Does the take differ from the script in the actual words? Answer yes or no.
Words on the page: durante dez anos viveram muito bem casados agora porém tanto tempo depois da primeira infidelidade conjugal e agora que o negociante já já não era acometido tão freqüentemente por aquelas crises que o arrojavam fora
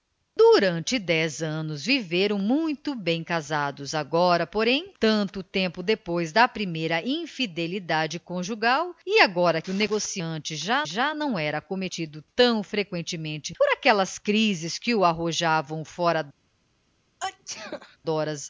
no